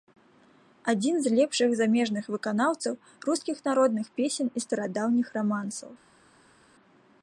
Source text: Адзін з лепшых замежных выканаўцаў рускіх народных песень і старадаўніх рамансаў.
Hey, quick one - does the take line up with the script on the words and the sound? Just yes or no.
yes